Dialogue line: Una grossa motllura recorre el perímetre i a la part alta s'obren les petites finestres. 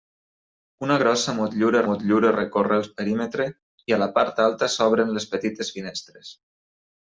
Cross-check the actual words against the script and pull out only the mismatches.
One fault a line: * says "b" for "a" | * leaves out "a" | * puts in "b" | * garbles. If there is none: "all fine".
* puts in "motllura"